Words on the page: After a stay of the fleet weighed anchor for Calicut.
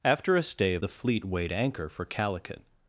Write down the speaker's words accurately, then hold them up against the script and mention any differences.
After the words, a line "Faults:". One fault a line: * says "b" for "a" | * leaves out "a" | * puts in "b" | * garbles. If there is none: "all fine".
After a stay of the fleet weighed anchor for Calicut.
Faults:
all fine